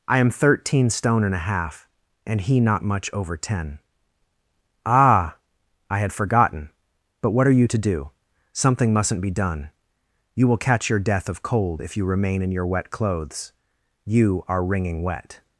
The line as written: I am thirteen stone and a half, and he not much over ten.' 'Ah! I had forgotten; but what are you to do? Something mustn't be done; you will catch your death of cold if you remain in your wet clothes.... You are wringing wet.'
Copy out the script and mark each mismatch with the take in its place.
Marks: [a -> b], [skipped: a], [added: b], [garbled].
I am thirteen stone and a half, and he not much over ten.' 'Ah! I had forgotten; but what are you to do? Something mustn't be done; you will catch your death of cold if you remain in your wet clothes.... You are wringing wet.'